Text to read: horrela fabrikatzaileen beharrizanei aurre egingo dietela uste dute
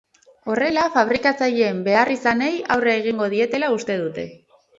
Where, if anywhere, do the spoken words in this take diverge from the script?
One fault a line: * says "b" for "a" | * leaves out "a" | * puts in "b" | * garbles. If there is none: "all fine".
all fine